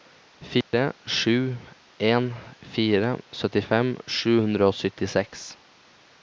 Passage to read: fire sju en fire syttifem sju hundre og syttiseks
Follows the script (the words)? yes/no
yes